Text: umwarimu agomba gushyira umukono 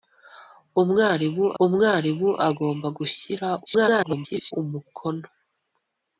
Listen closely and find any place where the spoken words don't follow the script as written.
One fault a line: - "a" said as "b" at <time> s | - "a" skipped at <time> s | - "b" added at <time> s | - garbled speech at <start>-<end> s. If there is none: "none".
- "umwarimu" added at 1.6 s
- garbled speech at 3.7-4.5 s